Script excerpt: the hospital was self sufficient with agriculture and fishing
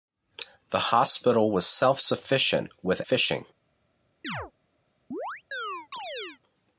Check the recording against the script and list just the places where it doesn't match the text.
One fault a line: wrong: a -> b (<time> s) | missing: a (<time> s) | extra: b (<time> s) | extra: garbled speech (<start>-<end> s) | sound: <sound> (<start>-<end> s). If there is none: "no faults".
missing: agriculture and (3.0 s)
sound: chirp (4.2-4.5 s)
sound: chirp (5.1-6.4 s)